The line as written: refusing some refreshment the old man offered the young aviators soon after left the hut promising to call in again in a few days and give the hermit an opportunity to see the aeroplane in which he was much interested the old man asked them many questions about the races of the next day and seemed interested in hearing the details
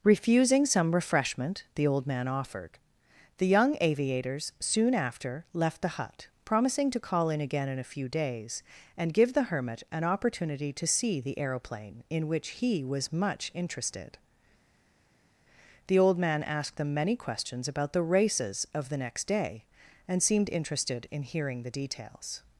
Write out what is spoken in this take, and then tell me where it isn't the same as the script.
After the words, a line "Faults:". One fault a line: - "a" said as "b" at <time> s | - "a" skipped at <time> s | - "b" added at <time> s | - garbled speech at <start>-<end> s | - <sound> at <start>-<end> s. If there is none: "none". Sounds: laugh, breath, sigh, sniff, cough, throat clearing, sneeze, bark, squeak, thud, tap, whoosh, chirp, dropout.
refusing some refreshment the old man offered the young aviators soon after left the hut promising to call in again in a few days and give the hermit an opportunity to see the aeroplane in which he was much interested the old man asked them many questions about the races of the next day and seemed interested in hearing the details
Faults:
none